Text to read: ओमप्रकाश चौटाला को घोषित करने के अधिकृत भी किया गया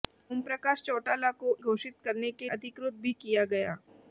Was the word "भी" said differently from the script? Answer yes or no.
no